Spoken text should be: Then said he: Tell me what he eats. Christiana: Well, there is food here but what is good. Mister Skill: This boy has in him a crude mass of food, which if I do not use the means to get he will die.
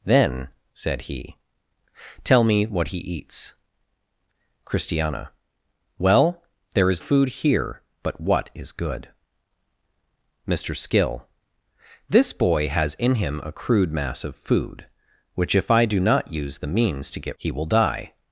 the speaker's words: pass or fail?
pass